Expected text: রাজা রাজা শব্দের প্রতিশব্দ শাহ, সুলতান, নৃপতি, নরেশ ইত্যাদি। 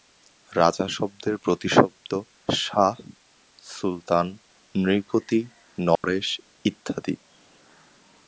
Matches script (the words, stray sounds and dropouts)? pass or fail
fail